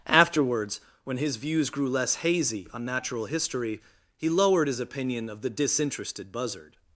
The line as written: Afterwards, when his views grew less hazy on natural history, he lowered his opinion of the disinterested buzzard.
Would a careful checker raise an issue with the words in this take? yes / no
no